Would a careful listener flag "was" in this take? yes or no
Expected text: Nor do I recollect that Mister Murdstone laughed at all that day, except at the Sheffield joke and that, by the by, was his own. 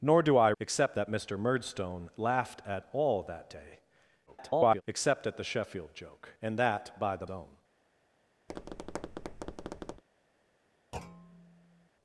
yes